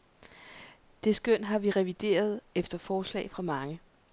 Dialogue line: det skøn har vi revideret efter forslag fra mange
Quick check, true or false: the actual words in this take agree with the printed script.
true